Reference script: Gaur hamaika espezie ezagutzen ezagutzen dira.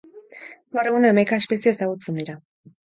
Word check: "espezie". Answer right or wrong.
right